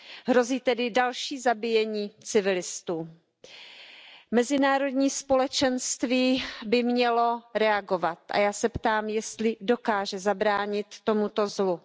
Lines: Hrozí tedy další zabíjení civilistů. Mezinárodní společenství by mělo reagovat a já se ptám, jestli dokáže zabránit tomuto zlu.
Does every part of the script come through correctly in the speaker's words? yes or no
yes